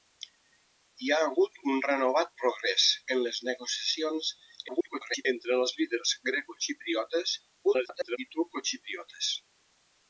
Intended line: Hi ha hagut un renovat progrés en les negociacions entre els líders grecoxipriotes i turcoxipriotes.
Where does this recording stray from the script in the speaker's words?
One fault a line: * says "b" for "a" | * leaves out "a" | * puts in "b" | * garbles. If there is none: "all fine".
* garbles
* garbles